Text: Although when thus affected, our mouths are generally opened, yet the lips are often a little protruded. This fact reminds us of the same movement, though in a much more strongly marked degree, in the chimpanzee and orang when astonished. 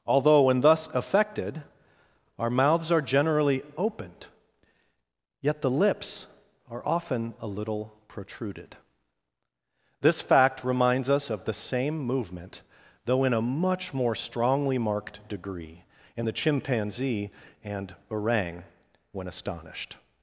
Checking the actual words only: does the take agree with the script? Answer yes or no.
yes